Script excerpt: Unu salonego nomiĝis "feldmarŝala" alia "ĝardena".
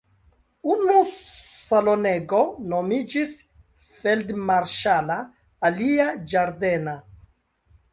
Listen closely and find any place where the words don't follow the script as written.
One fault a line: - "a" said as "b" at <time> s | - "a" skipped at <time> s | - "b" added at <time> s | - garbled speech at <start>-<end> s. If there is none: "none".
none